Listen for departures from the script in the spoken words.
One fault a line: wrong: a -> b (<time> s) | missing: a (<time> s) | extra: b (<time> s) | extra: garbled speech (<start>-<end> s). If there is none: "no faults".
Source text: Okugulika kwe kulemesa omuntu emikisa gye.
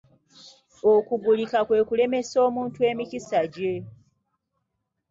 no faults